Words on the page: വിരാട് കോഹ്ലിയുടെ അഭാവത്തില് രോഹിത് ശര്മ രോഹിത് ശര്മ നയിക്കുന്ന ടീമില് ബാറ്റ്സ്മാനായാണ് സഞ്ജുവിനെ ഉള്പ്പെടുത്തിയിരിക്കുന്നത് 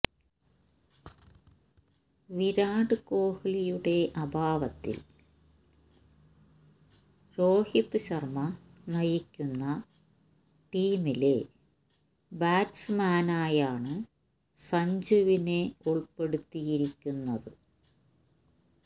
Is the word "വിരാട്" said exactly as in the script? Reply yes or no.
yes